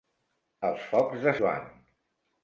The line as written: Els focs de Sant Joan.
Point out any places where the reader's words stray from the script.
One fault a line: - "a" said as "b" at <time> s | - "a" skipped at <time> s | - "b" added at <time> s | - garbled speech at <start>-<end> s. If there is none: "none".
- "Sant" skipped at 1.4 s